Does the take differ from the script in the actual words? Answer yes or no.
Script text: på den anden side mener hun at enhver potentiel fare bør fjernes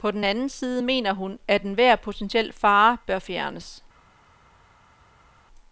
no